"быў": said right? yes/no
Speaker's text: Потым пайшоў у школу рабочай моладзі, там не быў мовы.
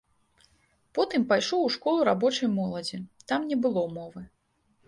no